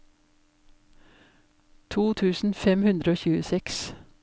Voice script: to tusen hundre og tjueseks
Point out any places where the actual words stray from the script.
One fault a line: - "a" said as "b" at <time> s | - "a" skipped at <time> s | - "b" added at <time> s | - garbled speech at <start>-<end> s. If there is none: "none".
- "fem" added at 2.6 s